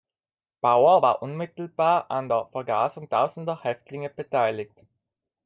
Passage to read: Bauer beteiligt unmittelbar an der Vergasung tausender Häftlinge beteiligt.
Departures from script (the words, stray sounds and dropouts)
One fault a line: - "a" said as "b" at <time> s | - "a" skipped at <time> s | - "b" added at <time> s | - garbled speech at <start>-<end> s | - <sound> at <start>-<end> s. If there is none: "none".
- "beteiligt" said as "war" at 1.0 s